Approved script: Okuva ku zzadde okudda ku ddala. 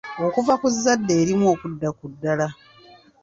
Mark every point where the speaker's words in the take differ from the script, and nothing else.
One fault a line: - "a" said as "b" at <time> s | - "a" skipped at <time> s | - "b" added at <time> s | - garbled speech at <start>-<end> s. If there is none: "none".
- "erimu" added at 1.2 s